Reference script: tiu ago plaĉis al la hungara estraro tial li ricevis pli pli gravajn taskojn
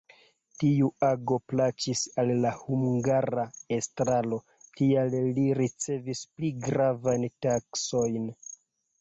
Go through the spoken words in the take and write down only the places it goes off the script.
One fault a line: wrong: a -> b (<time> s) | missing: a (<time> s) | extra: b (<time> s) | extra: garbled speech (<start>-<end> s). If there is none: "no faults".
missing: pli (6.5 s)